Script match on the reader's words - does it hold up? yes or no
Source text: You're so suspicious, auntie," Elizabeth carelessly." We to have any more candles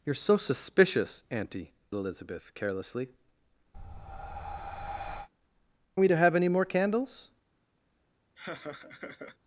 yes